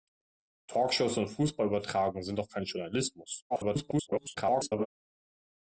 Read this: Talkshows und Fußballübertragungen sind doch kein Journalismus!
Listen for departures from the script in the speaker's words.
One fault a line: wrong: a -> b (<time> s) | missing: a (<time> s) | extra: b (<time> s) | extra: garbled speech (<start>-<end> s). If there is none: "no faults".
extra: garbled speech (3.5-4.9 s)